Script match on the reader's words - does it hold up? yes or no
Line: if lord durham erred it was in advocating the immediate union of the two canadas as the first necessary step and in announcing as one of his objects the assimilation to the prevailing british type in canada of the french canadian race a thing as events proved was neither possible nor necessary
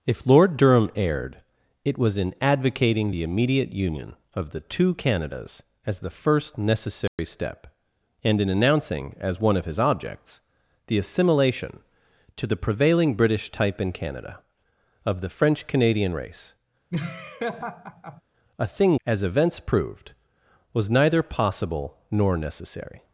yes